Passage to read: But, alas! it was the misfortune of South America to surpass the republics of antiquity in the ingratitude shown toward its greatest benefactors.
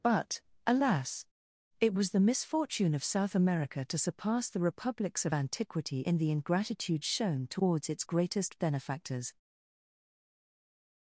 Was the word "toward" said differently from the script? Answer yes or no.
yes